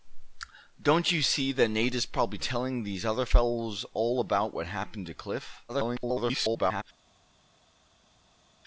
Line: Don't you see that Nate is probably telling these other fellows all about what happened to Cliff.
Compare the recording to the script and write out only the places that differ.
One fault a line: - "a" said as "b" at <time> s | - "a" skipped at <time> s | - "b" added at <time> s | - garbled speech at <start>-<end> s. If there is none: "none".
- garbled speech at 5.7-6.8 s